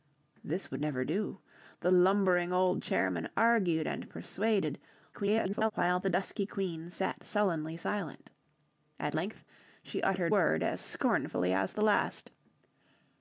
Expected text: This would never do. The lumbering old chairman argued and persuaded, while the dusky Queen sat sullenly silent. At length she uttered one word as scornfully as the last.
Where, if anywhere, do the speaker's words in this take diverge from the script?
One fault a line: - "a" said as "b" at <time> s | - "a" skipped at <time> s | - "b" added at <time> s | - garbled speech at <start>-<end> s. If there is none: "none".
- garbled speech at 5.1-5.7 s
- "one" skipped at 10.3 s